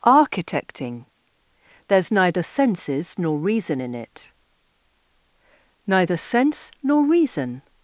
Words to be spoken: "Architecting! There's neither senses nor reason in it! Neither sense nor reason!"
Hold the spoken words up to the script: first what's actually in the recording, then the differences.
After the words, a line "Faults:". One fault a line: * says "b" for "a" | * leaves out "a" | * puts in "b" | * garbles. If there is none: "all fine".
"Architecting! There's neither senses nor reason in it! Neither sense nor reason!"
Faults:
all fine